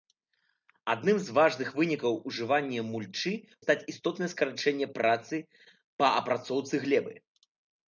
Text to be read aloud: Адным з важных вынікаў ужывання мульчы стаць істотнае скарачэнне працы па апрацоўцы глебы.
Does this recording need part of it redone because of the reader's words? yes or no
no